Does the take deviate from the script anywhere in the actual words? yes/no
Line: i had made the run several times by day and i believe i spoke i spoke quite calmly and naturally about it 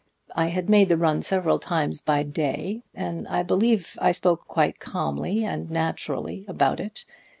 yes